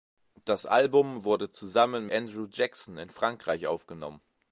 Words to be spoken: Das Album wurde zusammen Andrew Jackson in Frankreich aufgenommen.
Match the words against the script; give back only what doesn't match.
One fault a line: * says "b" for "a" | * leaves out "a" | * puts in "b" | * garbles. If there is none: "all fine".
all fine